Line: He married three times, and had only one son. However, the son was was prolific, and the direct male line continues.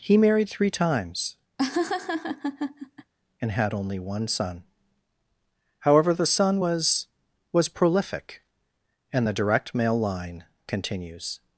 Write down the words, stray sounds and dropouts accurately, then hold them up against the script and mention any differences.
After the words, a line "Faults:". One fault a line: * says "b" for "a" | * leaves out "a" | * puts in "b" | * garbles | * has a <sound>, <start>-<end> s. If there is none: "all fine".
He married three times, and had only one son. However, the son was was prolific, and the direct male line continues.
Faults:
* has a laugh, 1.6-3.1 s